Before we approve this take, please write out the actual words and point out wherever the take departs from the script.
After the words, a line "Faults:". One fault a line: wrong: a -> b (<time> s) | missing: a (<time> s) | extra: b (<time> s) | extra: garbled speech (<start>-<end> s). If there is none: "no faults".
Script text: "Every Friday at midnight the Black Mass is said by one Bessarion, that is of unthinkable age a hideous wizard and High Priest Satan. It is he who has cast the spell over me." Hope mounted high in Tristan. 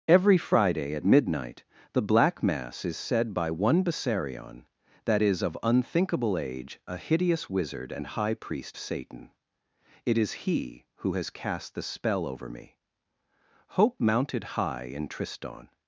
"Every Friday at midnight the Black Mass is said by one Bessarion, that is of unthinkable age a hideous wizard and High Priest Satan. It is he who has cast the spell over me." Hope mounted high in Tristan.
Faults:
no faults